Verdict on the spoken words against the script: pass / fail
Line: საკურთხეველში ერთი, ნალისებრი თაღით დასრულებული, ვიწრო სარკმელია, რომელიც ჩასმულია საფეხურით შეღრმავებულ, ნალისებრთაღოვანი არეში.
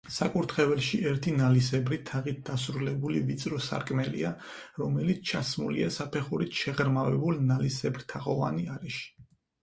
pass